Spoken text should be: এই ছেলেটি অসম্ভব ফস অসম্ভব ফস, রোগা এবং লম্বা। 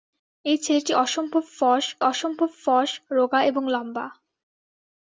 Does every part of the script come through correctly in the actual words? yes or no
yes